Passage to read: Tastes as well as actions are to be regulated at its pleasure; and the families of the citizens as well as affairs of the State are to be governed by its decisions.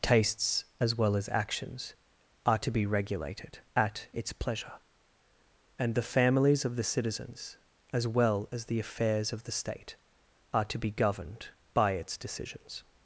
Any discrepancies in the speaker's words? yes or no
yes